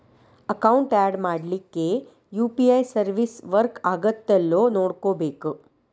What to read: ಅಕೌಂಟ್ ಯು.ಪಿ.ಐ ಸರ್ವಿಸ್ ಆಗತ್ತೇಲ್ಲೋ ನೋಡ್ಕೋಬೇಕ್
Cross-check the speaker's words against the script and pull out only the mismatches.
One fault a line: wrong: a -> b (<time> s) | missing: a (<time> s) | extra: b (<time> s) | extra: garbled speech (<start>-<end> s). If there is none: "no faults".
extra: ಯಾಡ್ ಮಾಡ್ಲಿಕ್ಕೆ (1.0 s)
extra: ವರ್ಕ್ (3.5 s)